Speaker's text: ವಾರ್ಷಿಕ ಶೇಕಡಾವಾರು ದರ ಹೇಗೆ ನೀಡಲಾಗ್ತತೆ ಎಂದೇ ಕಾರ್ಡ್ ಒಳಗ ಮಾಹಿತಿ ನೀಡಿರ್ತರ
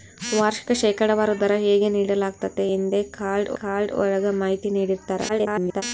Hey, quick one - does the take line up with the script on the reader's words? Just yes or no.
no